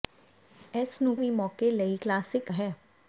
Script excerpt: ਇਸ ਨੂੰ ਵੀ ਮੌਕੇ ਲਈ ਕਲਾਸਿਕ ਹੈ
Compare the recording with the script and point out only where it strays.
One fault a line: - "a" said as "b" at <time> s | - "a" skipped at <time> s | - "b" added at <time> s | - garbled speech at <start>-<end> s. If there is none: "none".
none